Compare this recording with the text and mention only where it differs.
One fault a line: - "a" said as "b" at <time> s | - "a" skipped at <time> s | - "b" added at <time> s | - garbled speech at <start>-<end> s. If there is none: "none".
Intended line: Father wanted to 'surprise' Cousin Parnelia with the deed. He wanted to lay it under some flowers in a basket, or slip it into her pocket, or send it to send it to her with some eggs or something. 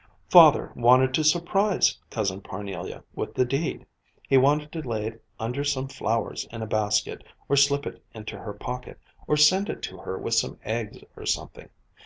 - "send it to" skipped at 10.0 s